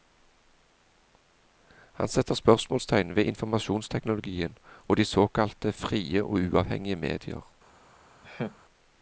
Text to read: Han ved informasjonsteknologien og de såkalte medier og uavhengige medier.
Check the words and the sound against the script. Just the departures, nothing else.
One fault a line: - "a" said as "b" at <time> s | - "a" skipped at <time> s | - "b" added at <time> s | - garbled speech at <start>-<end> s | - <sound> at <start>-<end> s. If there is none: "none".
- "setter spørsmålstegn" added at 2.1 s
- "medier" said as "frie" at 5.7 s
- laugh at 8.2-8.6 s